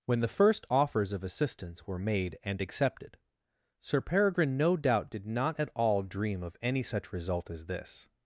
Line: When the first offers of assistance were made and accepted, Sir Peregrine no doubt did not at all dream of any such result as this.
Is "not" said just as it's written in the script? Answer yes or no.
yes